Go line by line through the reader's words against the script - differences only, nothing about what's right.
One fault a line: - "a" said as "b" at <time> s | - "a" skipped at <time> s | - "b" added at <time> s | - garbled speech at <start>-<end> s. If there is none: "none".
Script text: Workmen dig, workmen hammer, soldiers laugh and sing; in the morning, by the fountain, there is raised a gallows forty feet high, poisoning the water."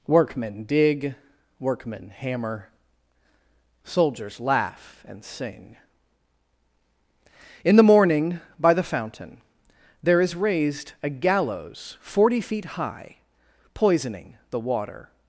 none